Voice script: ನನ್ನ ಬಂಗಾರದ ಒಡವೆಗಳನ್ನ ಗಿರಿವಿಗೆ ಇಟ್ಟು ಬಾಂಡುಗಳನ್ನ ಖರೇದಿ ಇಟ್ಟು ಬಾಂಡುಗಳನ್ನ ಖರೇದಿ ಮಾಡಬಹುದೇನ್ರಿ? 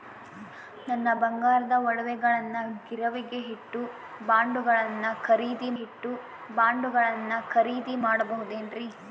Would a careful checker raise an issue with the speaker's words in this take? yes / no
no